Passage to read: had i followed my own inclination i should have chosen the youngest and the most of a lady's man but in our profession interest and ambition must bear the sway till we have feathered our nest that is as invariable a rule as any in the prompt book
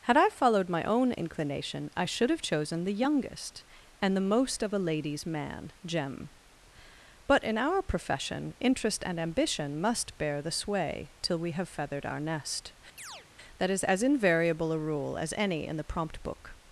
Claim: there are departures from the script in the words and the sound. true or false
true